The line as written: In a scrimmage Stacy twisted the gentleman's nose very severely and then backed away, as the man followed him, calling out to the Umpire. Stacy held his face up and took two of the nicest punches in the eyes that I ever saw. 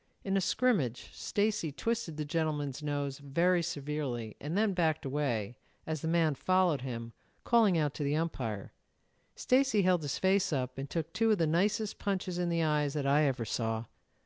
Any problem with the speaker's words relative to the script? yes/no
no